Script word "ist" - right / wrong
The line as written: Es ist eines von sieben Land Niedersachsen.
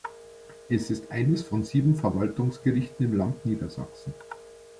right